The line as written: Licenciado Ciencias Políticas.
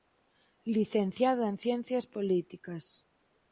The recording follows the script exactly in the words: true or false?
false